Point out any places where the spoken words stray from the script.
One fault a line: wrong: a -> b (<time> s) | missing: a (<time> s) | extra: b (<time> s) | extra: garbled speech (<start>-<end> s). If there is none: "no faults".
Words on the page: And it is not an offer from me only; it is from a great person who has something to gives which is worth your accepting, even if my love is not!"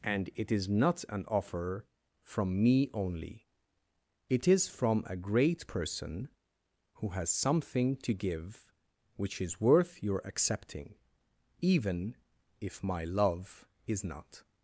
wrong: gives -> give (8.1 s)